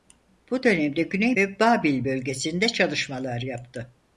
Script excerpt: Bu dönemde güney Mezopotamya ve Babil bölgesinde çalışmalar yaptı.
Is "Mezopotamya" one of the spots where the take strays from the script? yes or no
yes